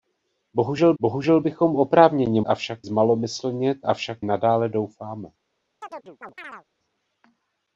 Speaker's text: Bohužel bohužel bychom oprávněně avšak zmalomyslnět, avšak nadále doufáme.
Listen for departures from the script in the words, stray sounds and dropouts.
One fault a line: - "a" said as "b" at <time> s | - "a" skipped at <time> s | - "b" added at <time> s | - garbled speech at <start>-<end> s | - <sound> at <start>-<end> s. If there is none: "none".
- chirp at 5.8-6.7 s